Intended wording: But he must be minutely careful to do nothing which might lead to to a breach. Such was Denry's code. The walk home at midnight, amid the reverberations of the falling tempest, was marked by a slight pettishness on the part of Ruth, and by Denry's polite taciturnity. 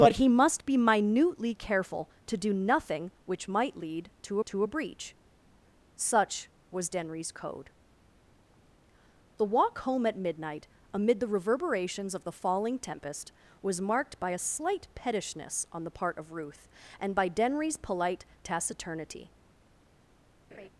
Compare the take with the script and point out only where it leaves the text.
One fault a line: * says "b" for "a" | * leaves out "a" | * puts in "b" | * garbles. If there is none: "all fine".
all fine